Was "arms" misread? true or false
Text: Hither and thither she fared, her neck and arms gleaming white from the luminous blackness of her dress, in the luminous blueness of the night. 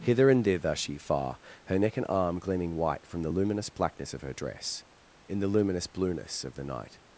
true